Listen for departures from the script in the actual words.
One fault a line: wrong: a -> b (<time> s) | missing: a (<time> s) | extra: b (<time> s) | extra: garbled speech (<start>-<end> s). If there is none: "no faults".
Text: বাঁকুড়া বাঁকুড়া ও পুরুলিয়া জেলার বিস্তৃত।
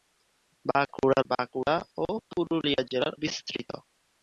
no faults